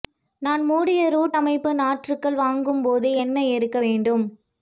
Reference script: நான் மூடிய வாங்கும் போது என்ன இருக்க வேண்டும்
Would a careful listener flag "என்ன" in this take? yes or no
no